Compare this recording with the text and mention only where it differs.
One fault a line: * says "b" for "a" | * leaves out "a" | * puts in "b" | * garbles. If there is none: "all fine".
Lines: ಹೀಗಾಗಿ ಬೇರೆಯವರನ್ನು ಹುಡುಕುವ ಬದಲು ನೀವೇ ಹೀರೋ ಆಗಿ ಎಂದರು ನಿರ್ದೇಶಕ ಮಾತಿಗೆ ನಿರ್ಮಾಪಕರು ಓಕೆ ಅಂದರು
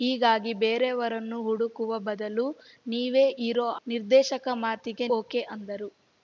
* leaves out "ಆಗಿ ಎಂದರು"
* leaves out "ನಿರ್ಮಾಪಕರು"